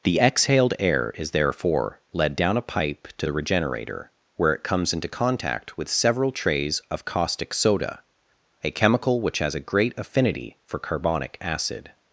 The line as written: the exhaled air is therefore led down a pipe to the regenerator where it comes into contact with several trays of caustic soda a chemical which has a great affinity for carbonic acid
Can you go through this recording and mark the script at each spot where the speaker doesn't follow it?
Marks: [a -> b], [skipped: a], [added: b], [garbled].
the exhaled air is therefore led down a pipe to the regenerator where it comes into contact with several trays of caustic soda a chemical which has a great affinity for carbonic acid